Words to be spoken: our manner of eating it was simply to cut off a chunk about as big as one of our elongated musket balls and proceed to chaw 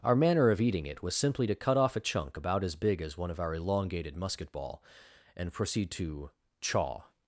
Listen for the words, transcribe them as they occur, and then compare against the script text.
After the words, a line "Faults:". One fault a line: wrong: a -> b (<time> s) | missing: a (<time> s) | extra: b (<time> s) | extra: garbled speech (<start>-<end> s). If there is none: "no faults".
our manner of eating it was simply to cut off a chunk about as big as one of our elongated musket ball and proceed to chaw
Faults:
wrong: balls -> ball (4.5 s)